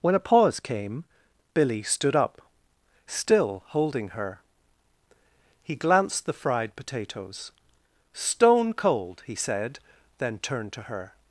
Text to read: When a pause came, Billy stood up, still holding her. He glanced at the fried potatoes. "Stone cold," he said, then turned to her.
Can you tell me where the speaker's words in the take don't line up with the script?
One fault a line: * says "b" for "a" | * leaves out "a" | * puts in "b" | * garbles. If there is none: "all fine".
* leaves out "at"